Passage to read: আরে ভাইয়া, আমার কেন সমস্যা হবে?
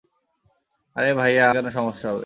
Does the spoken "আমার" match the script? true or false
false